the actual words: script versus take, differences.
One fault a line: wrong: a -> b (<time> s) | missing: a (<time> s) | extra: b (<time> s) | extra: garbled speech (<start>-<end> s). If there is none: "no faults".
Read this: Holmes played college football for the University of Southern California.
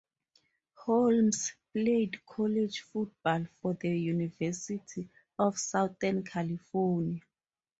no faults